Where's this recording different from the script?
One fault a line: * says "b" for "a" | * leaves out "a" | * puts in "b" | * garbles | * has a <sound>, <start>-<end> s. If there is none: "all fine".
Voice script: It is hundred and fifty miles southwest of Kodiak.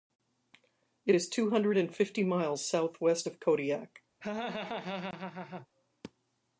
* puts in "two"
* has a laugh, 4.2-5.7 s